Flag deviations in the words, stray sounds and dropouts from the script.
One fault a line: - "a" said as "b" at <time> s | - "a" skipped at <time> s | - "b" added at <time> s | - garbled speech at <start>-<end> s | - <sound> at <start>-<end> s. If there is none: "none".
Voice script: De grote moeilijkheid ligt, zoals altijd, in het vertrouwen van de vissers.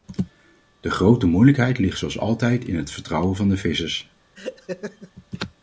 - laugh at 4.3-5.1 s